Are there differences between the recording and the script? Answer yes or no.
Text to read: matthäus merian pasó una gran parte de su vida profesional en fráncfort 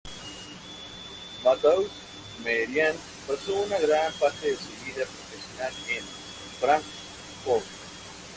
no